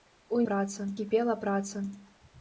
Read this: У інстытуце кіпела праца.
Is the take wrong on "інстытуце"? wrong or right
wrong